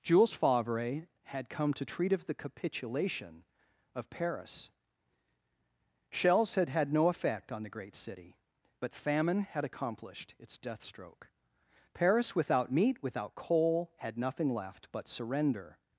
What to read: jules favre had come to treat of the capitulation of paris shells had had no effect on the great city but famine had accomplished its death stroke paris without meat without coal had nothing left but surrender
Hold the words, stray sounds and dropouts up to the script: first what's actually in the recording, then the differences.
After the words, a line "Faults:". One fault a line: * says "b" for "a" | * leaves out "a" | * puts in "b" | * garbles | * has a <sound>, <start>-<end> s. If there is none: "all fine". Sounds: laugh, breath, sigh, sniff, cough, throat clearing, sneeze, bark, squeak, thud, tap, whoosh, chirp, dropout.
jules favre had come to treat of the capitulation of paris shells had had no effect on the great city but famine had accomplished its death stroke paris without meat without coal had nothing left but surrender
Faults:
all fine